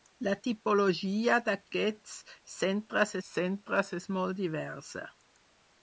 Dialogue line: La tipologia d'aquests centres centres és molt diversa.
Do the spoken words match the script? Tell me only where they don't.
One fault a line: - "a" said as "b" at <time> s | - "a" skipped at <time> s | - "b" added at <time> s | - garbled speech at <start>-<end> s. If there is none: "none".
none